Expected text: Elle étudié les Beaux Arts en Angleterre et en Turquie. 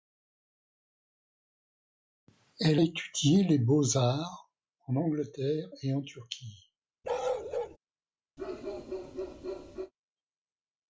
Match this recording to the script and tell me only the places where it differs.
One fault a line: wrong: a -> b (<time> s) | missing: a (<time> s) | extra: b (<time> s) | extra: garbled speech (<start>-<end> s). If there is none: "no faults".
no faults